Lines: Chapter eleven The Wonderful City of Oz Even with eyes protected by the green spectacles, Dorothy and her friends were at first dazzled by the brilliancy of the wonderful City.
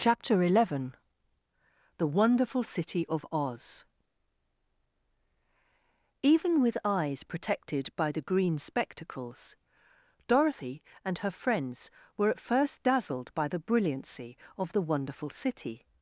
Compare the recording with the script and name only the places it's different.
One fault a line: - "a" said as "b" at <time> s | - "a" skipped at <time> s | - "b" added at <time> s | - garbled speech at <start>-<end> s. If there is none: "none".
none